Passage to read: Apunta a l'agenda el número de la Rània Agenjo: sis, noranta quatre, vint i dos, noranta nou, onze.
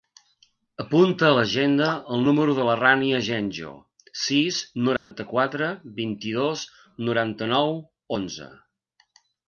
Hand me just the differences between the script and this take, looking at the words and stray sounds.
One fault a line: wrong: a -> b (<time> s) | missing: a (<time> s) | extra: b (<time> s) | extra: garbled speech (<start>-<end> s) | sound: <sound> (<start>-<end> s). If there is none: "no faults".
sound: dropout (5.0-5.1 s)